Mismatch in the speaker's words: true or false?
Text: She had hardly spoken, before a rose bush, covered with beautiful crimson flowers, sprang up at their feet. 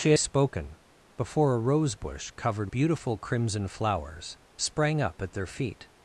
true